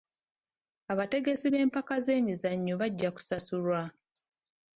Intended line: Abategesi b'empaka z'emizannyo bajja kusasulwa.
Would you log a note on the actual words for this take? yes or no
no